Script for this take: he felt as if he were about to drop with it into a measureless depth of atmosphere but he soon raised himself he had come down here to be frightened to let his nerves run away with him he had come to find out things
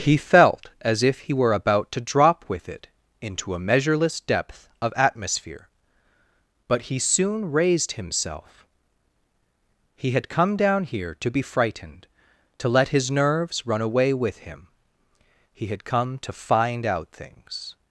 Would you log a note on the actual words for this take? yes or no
no